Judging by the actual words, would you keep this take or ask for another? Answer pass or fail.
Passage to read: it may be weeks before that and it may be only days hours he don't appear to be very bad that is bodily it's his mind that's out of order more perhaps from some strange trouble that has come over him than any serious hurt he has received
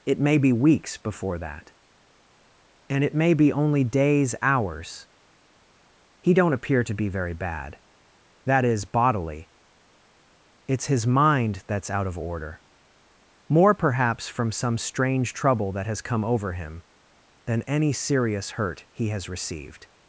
pass